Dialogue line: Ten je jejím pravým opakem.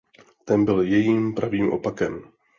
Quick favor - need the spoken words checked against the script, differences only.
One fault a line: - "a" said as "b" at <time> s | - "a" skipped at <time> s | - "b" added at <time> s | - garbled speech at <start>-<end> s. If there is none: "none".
- "je" said as "byl" at 0.6 s